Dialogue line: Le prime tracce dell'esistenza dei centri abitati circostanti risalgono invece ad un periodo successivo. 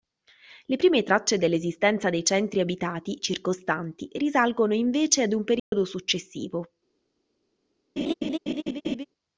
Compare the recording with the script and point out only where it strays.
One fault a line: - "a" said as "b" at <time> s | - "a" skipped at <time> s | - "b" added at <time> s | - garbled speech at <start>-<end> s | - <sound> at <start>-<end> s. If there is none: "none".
- dropout at 5.6-5.7 s
- laugh at 8.0-9.1 s